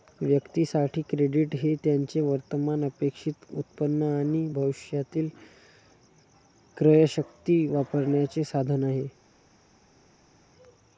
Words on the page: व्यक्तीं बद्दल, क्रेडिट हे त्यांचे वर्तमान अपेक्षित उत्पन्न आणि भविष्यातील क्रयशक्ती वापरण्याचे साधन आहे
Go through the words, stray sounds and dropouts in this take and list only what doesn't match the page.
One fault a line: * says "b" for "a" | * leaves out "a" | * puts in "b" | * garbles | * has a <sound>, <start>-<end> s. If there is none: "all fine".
* says "साठी" for "बद्दल"